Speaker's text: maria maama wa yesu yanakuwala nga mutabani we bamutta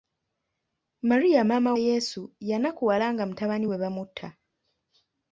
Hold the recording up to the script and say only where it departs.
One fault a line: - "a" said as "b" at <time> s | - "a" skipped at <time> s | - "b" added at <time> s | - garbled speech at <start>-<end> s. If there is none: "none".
- "wa" skipped at 1.8 s